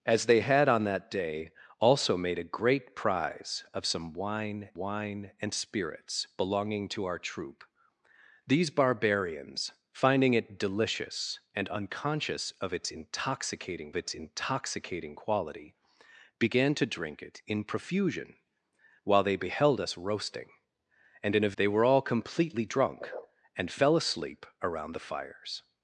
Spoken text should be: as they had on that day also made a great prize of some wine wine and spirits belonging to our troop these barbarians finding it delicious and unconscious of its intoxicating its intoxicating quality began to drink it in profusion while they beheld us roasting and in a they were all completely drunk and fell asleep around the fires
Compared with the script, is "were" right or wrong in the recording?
right